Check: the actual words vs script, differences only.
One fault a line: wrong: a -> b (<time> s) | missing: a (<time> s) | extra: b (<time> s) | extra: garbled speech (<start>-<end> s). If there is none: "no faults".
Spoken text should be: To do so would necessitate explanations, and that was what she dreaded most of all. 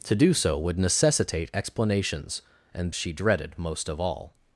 missing: that was what (2.9 s)